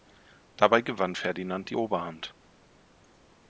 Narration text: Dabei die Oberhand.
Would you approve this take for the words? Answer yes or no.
no